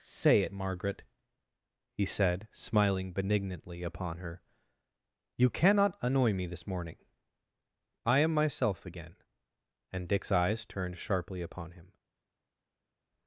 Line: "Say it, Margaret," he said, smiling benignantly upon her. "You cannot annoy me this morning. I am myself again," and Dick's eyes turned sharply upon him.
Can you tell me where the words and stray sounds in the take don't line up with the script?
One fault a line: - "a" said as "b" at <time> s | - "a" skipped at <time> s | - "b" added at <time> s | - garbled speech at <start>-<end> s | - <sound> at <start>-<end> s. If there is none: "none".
none